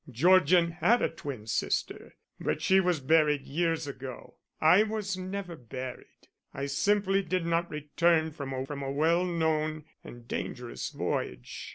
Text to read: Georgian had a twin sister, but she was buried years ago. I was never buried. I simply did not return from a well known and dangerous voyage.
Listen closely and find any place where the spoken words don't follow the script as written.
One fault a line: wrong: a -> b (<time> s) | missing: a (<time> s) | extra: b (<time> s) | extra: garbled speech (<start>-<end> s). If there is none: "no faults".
extra: from a (8.6 s)